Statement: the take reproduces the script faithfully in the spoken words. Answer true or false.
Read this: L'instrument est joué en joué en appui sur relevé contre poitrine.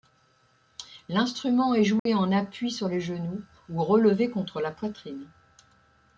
false